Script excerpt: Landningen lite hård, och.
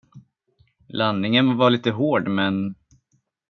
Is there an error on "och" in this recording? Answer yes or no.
yes